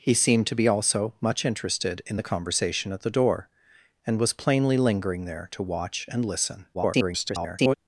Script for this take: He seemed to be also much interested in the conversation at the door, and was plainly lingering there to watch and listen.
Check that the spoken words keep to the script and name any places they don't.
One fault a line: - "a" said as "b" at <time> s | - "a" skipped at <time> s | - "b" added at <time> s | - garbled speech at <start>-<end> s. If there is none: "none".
- garbled speech at 6.7-7.8 s